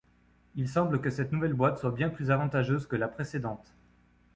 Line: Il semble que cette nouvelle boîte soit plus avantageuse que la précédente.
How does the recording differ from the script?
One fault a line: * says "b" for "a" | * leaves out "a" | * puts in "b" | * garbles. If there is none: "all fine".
* puts in "bien"